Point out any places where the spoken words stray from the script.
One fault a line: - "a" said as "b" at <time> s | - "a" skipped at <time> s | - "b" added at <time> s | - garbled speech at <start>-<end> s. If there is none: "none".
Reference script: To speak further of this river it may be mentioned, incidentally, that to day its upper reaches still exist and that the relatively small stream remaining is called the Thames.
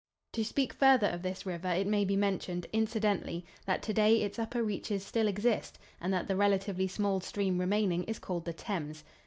none